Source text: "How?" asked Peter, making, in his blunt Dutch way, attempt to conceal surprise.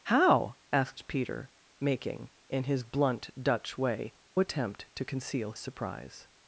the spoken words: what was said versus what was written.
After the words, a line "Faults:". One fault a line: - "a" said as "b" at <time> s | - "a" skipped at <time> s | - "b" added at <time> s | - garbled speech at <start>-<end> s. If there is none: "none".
"How?" asked Peter, making, in his blunt Dutch way, attempt to conceal surprise.
Faults:
none